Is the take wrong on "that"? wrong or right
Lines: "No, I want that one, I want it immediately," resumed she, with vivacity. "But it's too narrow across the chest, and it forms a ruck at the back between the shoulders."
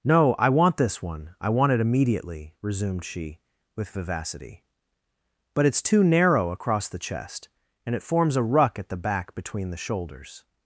wrong